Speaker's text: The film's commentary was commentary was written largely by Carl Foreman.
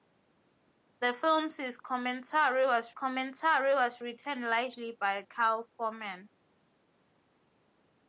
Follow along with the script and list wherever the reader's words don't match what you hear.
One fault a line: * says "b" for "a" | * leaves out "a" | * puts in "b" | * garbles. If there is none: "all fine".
all fine